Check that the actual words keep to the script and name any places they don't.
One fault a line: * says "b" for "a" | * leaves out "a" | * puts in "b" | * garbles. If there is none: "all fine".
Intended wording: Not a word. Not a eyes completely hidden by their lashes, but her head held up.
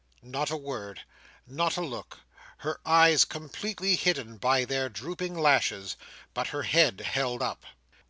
* puts in "look Her"
* puts in "drooping"